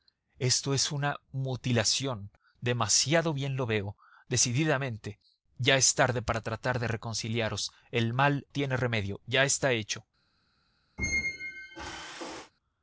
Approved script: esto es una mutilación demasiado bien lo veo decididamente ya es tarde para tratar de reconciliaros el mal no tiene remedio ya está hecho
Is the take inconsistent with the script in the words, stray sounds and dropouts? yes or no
yes